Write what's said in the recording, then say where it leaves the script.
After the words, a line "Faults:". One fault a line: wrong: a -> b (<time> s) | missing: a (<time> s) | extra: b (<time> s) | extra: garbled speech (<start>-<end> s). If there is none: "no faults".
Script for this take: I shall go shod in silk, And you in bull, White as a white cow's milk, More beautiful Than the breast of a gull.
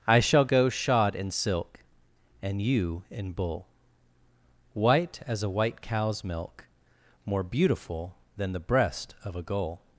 I shall go shod in silk, And you in bull, White as a white cow's milk, More beautiful Than the breast of a gull.
Faults:
no faults